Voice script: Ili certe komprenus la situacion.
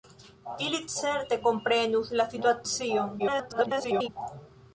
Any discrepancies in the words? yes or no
yes